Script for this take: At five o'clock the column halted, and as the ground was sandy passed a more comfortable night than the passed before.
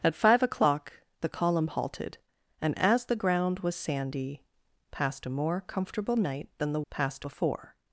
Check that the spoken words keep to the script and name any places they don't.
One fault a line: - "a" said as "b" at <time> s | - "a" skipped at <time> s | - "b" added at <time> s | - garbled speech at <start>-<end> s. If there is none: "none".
none